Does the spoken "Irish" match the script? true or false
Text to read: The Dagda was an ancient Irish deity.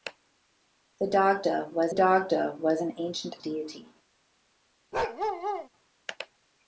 false